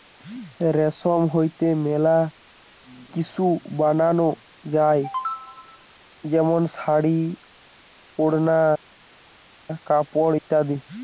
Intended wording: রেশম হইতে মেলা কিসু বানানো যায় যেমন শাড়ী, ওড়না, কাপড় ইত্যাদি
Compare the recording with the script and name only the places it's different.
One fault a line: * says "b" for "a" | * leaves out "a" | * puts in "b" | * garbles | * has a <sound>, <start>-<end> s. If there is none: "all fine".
all fine